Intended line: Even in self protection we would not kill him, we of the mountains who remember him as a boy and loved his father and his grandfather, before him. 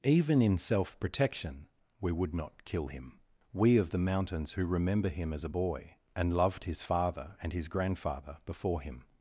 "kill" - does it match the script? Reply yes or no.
yes